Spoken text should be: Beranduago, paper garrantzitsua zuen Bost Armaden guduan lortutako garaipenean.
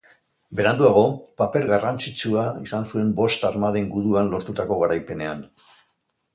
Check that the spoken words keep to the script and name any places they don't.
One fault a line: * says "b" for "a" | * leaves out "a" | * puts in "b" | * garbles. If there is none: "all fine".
* puts in "izan"